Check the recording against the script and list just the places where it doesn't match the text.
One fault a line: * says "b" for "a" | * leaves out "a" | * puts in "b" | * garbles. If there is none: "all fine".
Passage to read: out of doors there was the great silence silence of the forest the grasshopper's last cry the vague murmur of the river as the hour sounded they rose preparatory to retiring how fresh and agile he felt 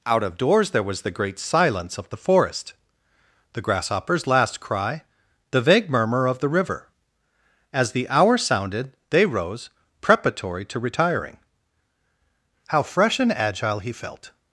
* leaves out "silence"